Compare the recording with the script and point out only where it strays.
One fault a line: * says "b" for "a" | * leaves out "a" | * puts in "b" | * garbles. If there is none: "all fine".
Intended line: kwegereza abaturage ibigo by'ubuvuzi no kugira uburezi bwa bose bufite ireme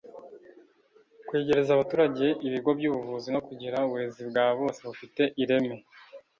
all fine